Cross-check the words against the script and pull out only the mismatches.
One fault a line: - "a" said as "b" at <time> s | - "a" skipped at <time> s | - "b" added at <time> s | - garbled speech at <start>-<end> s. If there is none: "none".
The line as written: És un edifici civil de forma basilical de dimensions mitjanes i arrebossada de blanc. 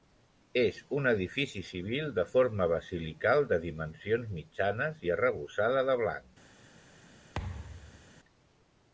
none